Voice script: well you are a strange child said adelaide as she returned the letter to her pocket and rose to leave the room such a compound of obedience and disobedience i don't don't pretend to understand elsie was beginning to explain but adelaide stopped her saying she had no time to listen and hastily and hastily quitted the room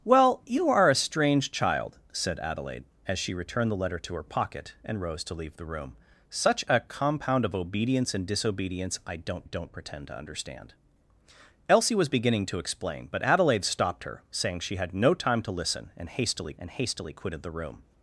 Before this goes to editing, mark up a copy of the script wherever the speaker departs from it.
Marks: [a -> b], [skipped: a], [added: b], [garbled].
well you are a strange child said adelaide as she returned the letter to her pocket and rose to leave the room such a compound of obedience and disobedience i don't don't pretend to understand elsie was beginning to explain but adelaide stopped her saying she had no time to listen and hastily and hastily quitted the room